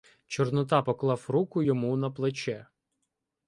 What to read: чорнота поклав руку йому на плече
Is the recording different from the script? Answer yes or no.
no